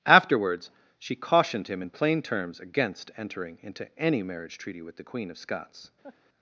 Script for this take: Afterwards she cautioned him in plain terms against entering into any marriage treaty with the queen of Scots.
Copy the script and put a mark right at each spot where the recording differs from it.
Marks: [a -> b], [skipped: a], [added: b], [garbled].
Afterwards she cautioned him in plain terms against entering into any marriage treaty with the queen of Scots.